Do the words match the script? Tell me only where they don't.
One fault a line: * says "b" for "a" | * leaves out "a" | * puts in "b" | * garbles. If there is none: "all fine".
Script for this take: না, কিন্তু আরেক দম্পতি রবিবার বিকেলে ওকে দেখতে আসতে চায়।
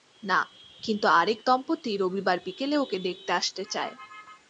all fine